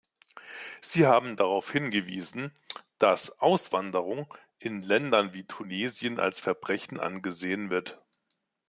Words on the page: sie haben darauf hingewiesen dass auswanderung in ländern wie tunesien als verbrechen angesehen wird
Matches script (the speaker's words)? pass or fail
pass